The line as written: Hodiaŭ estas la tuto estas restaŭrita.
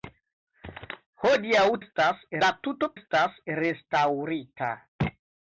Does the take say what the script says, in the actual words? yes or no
yes